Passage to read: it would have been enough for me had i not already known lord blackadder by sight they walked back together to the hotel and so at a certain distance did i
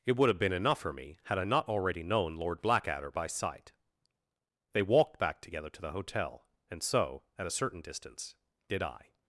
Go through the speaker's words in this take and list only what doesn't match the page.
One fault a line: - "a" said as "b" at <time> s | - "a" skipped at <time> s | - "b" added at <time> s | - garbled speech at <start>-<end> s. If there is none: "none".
none